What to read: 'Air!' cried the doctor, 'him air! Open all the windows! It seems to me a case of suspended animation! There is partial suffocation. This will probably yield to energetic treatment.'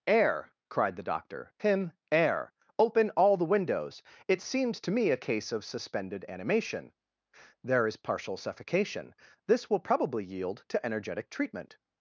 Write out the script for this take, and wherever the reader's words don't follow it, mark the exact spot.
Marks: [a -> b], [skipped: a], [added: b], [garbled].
'Air!' cried the doctor, 'him air! Open all the windows! It seems to me a case of suspended animation! There is partial suffocation. This will probably yield to energetic treatment.'